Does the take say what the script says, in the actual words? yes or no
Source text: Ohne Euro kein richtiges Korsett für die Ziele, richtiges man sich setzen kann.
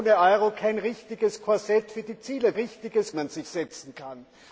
yes